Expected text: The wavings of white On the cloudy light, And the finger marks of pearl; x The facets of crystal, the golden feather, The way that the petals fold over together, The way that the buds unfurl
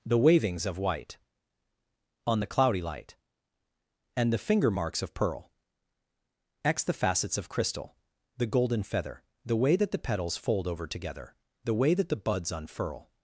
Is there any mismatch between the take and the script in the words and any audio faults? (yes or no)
no